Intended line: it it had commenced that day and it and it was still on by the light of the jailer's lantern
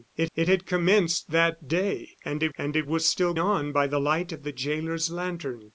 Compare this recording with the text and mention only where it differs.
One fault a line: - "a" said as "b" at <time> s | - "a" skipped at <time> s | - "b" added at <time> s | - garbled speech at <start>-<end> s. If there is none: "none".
none